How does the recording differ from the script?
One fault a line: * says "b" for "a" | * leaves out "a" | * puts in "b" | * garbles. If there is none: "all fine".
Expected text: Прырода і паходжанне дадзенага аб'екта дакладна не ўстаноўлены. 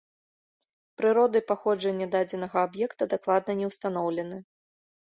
all fine